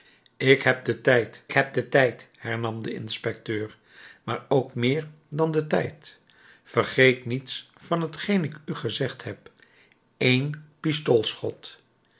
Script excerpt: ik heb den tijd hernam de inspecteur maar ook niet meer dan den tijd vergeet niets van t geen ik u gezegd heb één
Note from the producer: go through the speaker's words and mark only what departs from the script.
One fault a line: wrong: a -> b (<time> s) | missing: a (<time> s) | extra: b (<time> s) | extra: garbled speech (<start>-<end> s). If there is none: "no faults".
extra: heb den tijd (1.5 s)
missing: niet (4.7 s)